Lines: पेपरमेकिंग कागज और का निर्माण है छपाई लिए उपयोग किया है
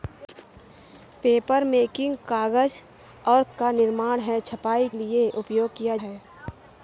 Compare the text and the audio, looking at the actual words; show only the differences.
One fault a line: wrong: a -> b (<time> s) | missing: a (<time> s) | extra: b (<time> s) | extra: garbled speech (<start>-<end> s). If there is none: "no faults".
no faults